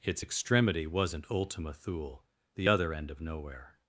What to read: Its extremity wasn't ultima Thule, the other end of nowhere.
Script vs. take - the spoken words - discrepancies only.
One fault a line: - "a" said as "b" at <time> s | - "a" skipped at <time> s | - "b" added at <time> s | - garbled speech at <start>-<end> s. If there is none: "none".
none